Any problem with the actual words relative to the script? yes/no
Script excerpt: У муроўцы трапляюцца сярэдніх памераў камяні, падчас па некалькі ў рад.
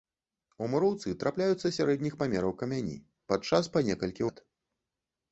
yes